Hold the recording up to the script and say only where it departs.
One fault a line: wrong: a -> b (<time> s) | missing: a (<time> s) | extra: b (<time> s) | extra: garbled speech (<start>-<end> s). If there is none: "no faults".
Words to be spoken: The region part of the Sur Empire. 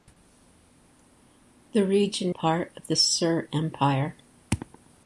no faults